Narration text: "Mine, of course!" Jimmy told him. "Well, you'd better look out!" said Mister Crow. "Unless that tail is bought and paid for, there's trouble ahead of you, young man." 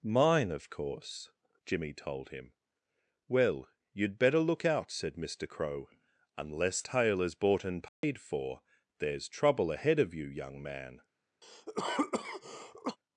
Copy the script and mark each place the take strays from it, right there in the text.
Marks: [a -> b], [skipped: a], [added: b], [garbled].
"Mine, of course!" Jimmy told him. "Well, you'd better look out!" said Mister Crow. "Unless [skipped: that] tail is bought and paid for, there's trouble ahead of you, young man."